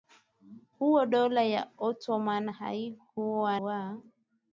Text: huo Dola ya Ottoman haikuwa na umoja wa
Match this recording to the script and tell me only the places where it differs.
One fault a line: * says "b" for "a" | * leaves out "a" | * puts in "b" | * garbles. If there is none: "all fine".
* leaves out "na umoja"